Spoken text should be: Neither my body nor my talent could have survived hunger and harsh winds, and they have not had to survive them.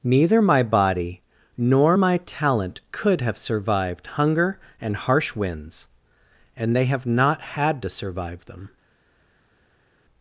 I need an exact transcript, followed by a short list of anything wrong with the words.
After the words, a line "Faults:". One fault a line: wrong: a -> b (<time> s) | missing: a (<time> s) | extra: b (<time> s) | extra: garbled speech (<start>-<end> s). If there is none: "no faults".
Neither my body nor my talent could have survived hunger and harsh winds, and they have not had to survive them.
Faults:
no faults